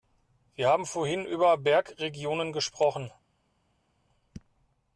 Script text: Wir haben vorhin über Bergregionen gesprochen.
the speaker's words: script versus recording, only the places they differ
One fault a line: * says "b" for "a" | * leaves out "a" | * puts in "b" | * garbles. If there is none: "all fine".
all fine